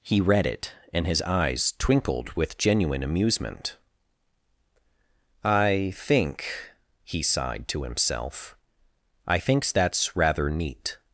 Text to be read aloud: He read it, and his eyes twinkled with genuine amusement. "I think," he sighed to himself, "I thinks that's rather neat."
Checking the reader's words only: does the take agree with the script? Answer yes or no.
yes